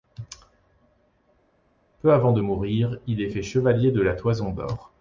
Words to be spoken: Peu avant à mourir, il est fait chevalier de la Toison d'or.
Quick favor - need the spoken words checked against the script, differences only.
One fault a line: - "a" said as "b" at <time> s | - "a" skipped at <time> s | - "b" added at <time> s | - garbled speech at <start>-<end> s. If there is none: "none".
- "à" said as "de" at 2.3 s